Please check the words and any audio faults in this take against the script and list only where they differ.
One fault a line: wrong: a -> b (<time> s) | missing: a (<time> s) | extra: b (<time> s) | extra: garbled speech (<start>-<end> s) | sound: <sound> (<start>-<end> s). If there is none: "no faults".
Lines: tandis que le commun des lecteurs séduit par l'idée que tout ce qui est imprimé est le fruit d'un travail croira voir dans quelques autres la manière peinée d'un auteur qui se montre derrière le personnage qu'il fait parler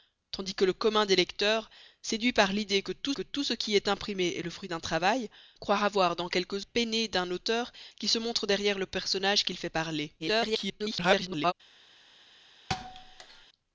extra: que tout (3.1 s)
missing: autres la manière (6.7 s)
extra: garbled speech (10.2-11.5 s)
sound: thud (12.7-13.5 s)